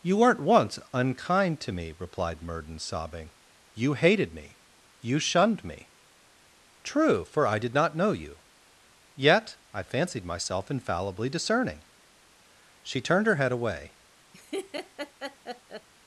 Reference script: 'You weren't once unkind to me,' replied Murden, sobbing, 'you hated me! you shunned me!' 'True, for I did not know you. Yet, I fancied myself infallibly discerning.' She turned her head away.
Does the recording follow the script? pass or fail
pass